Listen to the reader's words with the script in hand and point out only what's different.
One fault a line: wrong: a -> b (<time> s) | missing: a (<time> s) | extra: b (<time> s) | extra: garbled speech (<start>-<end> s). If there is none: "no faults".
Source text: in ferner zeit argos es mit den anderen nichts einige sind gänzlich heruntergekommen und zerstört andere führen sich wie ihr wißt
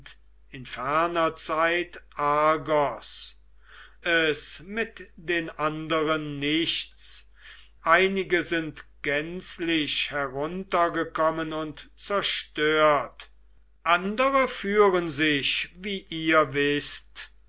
no faults